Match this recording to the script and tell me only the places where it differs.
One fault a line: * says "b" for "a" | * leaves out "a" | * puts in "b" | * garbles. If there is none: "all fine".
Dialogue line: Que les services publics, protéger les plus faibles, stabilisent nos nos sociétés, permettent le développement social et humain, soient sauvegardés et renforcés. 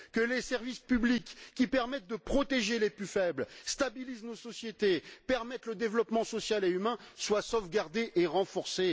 * puts in "qui permettent de"
* leaves out "nos"